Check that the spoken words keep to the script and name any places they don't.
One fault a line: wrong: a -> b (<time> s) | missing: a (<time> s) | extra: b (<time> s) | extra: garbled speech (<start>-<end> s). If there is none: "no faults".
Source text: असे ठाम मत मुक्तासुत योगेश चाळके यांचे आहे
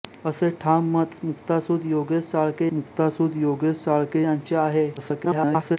extra: मुक्तासुत योगेश चाळके (2.7 s)
extra: garbled speech (5.0-5.8 s)